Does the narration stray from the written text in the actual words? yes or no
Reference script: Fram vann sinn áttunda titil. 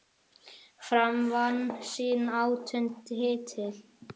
no